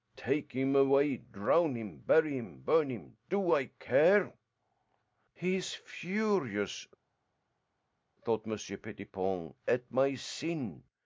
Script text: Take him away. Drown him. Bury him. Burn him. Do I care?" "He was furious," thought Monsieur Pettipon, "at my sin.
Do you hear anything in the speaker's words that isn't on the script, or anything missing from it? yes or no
yes